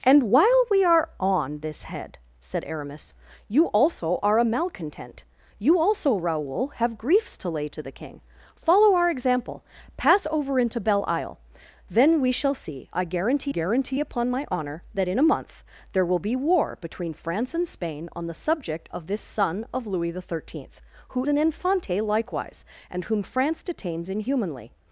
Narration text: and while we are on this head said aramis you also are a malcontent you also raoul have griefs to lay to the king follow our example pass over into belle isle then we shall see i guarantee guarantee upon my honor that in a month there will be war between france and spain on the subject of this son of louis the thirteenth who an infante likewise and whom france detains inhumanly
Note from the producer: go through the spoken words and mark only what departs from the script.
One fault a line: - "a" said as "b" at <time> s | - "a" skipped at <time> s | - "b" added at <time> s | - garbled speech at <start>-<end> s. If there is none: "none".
none